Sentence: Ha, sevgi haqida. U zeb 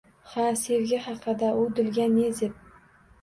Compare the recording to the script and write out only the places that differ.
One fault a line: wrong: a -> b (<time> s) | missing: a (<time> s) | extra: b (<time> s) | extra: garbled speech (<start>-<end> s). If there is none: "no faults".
extra: dilga ne (1.8 s)